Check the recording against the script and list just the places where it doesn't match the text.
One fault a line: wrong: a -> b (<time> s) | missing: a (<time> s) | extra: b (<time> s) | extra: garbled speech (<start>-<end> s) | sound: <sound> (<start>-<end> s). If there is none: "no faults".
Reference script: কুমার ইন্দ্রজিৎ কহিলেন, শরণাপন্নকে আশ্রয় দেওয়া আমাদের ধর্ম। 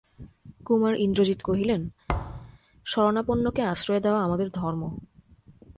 sound: thud (2.1-2.6 s)